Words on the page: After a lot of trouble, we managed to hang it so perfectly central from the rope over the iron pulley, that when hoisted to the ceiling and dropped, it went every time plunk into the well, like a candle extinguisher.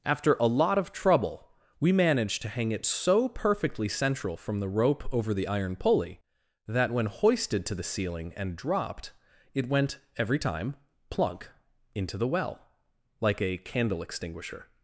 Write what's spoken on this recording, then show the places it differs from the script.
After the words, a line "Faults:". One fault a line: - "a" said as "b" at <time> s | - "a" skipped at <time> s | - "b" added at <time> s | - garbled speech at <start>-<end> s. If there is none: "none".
After a lot of trouble, we managed to hang it so perfectly central from the rope over the iron pulley, that when hoisted to the ceiling and dropped, it went every time plunk into the well, like a candle extinguisher.
Faults:
none